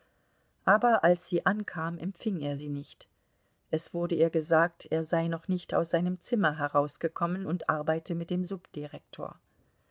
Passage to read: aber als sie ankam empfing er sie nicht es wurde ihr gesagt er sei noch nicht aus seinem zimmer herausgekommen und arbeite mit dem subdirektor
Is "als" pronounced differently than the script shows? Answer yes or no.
no